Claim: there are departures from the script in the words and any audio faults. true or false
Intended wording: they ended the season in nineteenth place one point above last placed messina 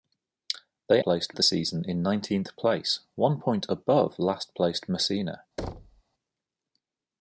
true